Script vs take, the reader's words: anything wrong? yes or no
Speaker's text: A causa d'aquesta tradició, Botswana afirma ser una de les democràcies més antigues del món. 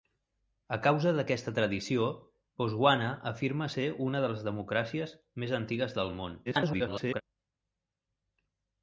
yes